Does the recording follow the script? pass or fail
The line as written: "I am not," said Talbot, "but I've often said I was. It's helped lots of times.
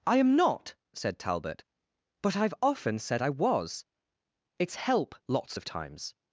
fail